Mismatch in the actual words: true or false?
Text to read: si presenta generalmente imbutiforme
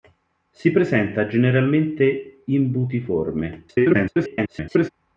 true